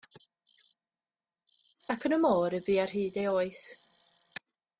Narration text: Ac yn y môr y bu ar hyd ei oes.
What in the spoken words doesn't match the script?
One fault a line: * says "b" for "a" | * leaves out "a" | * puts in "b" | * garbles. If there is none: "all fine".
all fine